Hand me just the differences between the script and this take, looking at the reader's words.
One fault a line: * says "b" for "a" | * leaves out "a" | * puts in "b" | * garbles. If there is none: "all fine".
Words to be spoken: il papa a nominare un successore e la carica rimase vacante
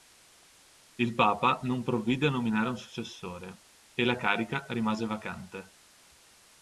* puts in "non provvide"